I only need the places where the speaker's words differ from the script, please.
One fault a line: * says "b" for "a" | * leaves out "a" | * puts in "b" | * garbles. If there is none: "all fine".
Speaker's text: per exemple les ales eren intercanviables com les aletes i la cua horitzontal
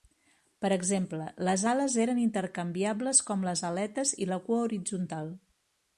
all fine